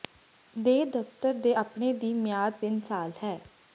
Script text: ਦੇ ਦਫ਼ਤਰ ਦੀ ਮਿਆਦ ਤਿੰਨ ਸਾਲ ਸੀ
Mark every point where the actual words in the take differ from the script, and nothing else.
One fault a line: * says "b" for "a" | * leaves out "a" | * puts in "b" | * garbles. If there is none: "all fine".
* puts in "ਦੇ ਆਪਣੇ"
* says "ਹੈ" for "ਸੀ"